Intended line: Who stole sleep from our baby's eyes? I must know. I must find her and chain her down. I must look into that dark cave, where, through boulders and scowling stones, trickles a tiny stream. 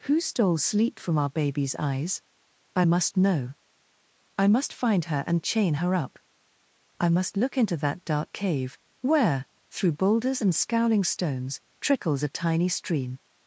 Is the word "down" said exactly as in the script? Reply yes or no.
no